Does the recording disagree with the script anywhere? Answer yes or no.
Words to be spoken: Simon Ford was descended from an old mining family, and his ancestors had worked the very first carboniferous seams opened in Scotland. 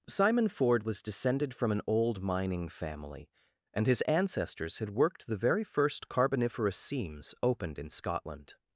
no